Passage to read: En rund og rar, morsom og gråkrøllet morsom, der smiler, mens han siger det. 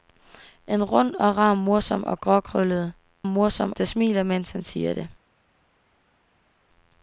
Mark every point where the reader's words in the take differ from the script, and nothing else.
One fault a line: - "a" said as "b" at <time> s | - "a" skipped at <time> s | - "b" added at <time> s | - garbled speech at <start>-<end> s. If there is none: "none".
none